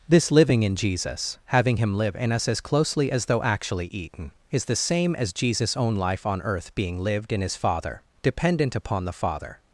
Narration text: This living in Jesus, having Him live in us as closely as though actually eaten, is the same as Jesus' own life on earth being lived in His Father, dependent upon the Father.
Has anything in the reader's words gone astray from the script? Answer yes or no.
no